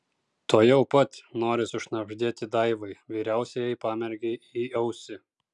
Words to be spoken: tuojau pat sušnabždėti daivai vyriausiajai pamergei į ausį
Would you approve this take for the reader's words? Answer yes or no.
no